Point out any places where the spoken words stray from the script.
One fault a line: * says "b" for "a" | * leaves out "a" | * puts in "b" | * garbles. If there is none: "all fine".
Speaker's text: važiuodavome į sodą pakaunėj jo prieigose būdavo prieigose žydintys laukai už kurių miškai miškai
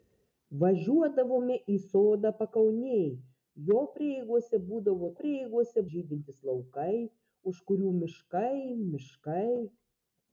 all fine